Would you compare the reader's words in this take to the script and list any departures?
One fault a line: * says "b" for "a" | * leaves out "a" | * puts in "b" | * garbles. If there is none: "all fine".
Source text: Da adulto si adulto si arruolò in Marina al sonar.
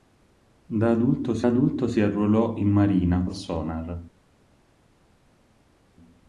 all fine